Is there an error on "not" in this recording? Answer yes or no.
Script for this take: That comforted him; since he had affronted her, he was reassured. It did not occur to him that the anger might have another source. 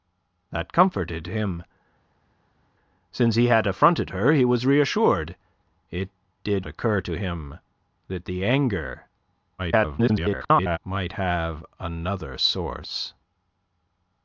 yes